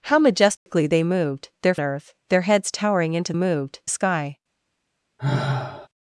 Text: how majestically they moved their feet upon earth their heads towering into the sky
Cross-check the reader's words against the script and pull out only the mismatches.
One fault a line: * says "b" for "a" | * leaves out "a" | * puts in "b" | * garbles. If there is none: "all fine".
* leaves out "feet upon"
* says "moved" for "the"